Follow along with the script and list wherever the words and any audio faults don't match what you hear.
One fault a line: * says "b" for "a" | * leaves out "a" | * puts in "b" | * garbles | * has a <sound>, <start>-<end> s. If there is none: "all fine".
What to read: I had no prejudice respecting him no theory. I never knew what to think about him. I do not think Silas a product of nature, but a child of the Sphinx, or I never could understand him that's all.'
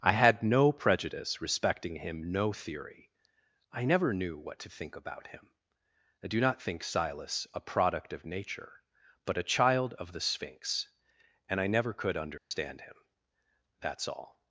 * says "and" for "or"
* has a dropout, 12.4-12.5 s